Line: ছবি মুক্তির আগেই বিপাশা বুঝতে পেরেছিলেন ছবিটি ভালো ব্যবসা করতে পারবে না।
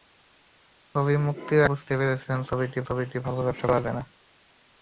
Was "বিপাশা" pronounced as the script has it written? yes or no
no